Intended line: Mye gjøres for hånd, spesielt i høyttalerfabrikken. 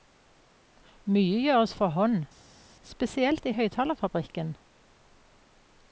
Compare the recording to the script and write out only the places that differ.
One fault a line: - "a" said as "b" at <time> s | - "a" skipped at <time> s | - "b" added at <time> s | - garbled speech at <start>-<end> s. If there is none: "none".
none